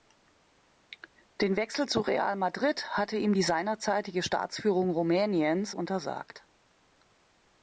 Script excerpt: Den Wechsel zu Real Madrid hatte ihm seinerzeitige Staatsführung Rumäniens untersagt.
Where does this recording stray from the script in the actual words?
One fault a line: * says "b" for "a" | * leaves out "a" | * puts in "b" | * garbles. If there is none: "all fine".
* puts in "die"